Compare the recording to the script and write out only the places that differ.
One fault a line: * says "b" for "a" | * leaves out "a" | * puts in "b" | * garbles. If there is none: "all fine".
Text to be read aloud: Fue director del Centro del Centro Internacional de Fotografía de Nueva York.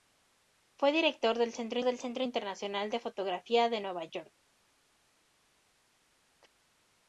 all fine